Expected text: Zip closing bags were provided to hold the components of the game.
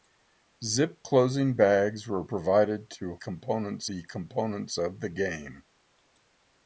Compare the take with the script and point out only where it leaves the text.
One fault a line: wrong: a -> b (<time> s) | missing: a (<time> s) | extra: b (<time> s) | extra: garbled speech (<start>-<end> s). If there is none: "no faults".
wrong: hold -> components (3.1 s)